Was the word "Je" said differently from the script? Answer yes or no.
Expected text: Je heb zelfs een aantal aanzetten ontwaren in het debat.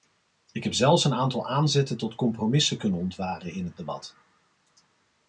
yes